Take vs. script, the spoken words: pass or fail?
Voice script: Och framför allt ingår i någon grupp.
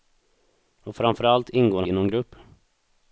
pass